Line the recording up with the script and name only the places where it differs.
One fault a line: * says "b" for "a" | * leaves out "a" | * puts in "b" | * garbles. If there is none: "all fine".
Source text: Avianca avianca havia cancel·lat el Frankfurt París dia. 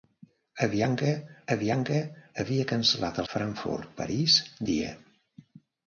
all fine